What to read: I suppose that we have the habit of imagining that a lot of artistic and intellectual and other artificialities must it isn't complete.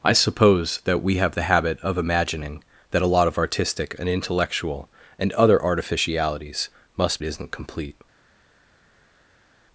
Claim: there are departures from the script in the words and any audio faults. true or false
false